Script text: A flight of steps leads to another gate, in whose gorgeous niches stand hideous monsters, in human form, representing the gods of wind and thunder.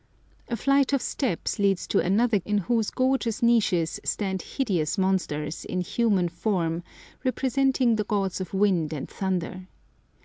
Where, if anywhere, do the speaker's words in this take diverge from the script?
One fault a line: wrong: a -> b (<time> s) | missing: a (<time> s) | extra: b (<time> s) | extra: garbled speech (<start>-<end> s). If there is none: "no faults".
missing: gate (2.4 s)